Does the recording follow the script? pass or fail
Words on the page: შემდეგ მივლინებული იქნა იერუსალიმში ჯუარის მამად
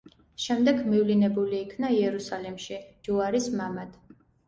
pass